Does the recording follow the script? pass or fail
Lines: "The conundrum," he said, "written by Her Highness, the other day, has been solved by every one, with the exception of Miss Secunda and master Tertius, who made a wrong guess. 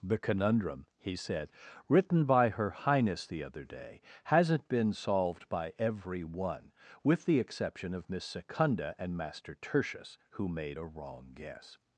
fail